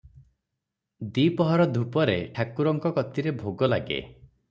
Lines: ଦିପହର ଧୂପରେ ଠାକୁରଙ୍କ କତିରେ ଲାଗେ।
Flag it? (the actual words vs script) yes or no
yes